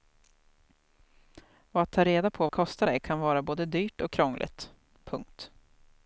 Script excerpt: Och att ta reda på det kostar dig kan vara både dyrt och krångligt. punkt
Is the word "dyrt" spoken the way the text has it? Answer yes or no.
yes